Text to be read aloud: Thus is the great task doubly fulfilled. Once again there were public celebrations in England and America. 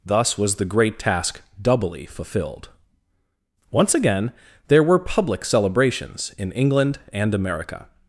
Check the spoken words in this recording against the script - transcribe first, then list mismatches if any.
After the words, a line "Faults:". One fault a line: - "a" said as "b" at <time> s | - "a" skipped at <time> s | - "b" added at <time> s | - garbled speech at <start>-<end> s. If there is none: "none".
Thus was the great task doubly fulfilled. Once again there were public celebrations in England and America.
Faults:
- "is" said as "was" at 0.4 s